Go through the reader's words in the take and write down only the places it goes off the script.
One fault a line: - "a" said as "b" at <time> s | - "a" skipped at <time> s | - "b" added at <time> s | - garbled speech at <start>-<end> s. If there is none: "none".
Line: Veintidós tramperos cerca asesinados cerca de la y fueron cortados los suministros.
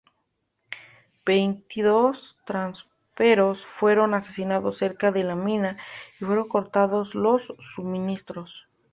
- "cerca" said as "fueron" at 3.7 s
- "mina" added at 5.3 s